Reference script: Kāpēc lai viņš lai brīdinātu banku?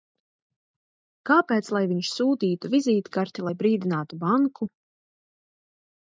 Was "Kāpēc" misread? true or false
false